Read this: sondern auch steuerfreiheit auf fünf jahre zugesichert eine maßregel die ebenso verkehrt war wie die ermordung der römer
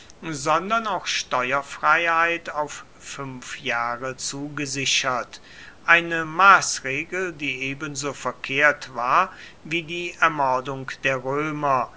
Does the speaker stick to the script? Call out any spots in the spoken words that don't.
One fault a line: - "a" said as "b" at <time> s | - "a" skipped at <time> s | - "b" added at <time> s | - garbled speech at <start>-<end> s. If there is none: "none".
none